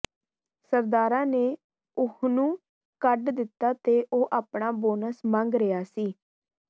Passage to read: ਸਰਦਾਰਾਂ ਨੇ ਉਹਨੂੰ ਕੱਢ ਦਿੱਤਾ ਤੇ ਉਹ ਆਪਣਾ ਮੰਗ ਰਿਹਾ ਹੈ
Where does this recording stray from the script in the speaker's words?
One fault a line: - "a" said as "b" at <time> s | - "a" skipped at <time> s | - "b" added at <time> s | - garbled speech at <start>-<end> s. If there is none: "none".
- "ਬੋਨਸ" added at 4.8 s
- "ਹੈ" said as "ਸੀ" at 5.9 s